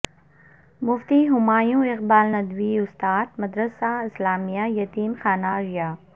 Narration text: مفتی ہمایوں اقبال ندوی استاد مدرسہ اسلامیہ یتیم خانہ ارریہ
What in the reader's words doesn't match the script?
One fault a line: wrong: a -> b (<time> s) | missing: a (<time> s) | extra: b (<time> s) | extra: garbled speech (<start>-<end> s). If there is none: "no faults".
no faults